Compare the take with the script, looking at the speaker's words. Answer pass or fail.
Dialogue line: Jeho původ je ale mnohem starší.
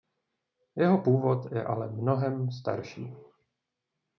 pass